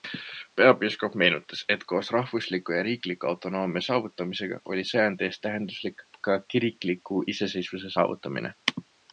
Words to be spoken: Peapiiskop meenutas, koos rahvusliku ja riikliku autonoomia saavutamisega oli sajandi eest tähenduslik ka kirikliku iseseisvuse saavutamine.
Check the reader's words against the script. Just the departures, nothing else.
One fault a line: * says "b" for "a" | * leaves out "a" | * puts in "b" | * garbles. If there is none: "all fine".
* puts in "et"